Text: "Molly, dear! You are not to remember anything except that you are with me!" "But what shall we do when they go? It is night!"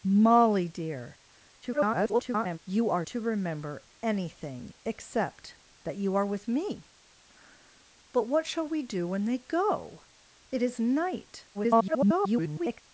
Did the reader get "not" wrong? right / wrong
wrong